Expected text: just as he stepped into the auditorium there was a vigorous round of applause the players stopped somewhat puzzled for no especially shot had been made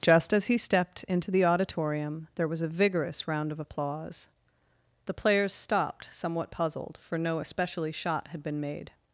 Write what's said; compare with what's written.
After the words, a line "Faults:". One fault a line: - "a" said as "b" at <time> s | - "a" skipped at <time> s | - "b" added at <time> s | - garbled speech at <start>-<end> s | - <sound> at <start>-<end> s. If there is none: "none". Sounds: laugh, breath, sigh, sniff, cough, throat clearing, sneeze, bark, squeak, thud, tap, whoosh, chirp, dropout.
just as he stepped into the auditorium there was a vigorous round of applause the players stopped somewhat puzzled for no especially shot had been made
Faults:
none